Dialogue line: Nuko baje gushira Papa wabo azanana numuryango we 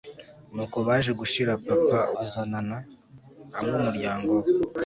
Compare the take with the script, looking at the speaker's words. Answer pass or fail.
fail